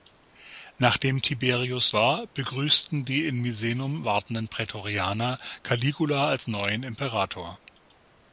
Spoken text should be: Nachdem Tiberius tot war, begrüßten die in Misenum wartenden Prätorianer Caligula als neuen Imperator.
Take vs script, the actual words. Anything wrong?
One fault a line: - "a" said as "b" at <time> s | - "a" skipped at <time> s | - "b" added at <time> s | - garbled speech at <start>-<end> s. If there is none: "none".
- "tot" skipped at 1.9 s